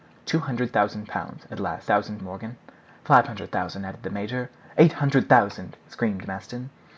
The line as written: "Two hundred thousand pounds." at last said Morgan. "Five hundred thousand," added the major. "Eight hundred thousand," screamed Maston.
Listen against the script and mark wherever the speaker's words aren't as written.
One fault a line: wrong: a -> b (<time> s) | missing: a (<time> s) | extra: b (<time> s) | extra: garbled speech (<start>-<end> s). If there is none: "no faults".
wrong: said -> thousand (1.9 s)